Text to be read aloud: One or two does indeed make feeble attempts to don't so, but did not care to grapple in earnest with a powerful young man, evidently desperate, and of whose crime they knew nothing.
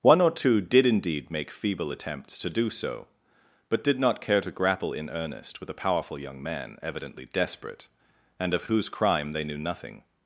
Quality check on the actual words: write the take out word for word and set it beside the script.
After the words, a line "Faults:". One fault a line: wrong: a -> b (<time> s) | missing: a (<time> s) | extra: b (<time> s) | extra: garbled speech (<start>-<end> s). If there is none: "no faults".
One or two did indeed make feeble attempts to do so, but did not care to grapple in earnest with a powerful young man, evidently desperate, and of whose crime they knew nothing.
Faults:
wrong: does -> did (0.6 s)
wrong: don't -> do (2.5 s)